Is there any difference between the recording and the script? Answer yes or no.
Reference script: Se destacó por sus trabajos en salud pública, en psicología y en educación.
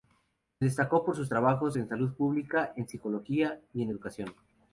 no